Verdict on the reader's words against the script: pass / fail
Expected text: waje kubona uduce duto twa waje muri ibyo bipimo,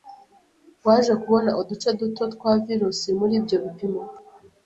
fail